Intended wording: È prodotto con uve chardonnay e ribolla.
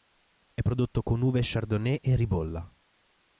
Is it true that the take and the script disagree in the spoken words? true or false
false